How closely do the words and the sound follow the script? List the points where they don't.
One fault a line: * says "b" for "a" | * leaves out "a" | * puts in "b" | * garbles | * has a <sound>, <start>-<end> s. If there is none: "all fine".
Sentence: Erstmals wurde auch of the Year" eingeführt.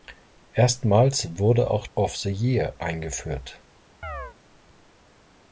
* has a chirp, 4.0-4.4 s